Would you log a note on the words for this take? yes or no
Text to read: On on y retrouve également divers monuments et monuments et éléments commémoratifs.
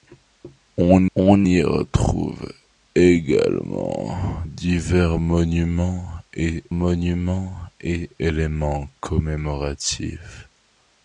no